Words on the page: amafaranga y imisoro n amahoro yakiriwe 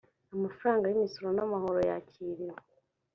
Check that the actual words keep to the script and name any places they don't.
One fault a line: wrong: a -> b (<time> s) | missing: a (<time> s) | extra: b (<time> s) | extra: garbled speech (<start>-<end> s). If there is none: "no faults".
no faults